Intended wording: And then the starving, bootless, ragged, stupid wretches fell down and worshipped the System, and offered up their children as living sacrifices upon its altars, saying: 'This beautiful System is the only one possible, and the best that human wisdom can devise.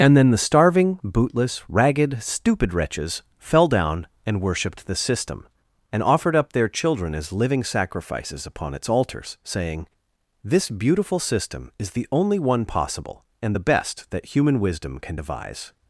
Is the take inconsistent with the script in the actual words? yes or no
no